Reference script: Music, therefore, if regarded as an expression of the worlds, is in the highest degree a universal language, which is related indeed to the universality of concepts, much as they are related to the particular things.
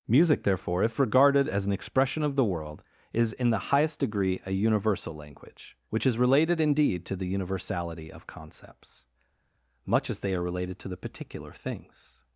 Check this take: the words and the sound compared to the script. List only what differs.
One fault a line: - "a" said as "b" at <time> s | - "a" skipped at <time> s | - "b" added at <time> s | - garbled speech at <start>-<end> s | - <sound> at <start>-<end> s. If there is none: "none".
- "worlds" said as "world" at 2.5 s